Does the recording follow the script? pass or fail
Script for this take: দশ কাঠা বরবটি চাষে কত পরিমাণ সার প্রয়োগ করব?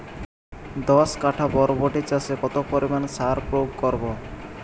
pass